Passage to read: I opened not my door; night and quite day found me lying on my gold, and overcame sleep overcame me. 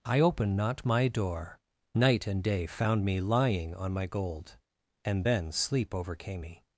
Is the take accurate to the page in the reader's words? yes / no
no